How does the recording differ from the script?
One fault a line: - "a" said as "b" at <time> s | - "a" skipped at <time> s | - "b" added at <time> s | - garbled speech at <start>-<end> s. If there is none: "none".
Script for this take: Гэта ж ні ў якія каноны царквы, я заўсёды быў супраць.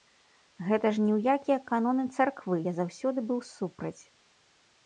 none